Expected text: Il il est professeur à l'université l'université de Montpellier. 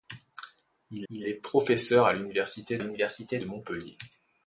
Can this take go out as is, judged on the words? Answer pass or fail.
pass